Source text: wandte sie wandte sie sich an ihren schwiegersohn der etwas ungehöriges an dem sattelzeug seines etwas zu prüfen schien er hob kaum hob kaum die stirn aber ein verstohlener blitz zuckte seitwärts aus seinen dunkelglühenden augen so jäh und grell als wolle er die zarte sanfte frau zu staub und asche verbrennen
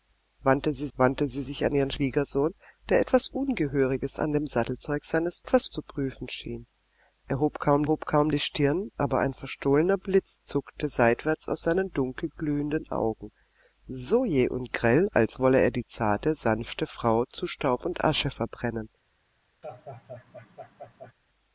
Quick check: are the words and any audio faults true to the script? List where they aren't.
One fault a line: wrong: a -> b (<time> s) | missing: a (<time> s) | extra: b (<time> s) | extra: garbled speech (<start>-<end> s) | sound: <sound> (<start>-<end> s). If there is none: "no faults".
sound: laugh (19.6-21.1 s)